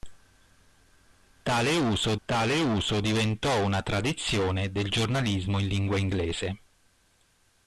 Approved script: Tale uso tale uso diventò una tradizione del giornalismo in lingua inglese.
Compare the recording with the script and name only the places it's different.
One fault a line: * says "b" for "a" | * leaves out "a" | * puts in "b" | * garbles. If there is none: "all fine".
all fine